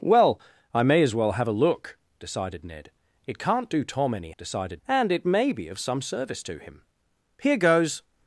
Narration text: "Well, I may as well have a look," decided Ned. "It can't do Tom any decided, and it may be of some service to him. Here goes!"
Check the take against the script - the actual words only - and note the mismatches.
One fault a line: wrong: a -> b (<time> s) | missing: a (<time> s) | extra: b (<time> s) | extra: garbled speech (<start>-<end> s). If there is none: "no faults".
no faults